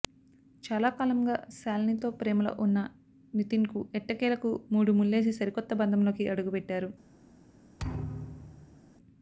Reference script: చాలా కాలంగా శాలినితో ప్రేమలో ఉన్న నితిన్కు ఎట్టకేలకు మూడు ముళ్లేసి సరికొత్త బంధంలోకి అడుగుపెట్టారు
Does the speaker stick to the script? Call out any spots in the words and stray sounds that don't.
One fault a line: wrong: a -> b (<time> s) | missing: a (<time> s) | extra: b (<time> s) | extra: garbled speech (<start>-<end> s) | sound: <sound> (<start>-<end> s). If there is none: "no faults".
sound: thud (7.8-8.8 s)